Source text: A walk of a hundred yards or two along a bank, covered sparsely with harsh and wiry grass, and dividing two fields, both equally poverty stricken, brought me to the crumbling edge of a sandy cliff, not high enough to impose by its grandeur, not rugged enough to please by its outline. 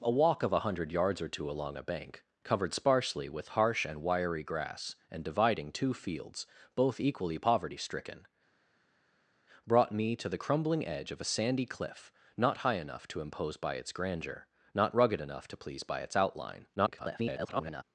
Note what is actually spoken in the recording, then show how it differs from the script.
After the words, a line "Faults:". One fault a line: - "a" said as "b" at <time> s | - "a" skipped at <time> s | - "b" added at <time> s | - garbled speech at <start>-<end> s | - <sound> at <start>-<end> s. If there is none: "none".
A walk of a hundred yards or two along a bank, covered sparsely with harsh and wiry grass, and dividing two fields, both equally poverty stricken, brought me to the crumbling edge of a sandy cliff, not high enough to impose by its grandeur, not rugged enough to please by its outline. [garbled]
Faults:
- garbled speech at 16.8-17.8 s